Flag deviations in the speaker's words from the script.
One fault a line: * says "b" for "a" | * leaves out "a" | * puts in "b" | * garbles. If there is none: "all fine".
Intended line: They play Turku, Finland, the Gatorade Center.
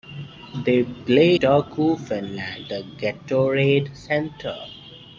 all fine